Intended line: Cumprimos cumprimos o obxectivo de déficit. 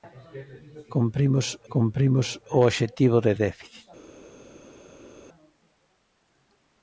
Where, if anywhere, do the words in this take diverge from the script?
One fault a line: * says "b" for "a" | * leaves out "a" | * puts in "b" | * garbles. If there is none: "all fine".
all fine